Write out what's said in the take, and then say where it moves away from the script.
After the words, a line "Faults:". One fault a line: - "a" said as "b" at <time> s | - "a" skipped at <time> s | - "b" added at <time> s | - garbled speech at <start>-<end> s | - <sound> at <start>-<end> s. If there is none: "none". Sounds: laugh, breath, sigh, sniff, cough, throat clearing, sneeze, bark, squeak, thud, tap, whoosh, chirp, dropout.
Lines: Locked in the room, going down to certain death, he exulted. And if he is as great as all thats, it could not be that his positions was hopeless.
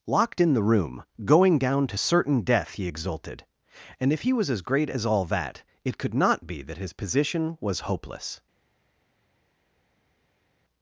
Locked in the room, going down to certain death, he exulted. And if he was as great as all that, it could not be that his position was hopeless.
Faults:
- "is" said as "was" at 4.3 s
- "thats" said as "that" at 5.2 s
- "positions" said as "position" at 6.9 s